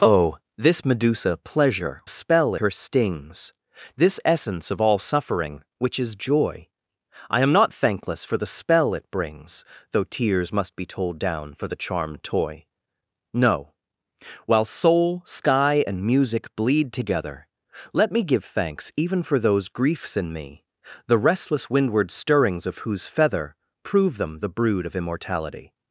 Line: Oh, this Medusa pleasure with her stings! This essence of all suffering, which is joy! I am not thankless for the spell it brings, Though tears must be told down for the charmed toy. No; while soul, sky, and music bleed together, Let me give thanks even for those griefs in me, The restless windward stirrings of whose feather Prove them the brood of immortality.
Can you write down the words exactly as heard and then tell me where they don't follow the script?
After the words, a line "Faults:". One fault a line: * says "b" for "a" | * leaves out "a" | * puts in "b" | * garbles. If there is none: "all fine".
Oh, this Medusa pleasure spell her stings! This essence of all suffering, which is joy! I am not thankless for the spell it brings, Though tears must be told down for the charmed toy. No; while soul, sky, and music bleed together, Let me give thanks even for those griefs in me, The restless windward stirrings of whose feather Prove them the brood of immortality.
Faults:
* says "spell" for "with"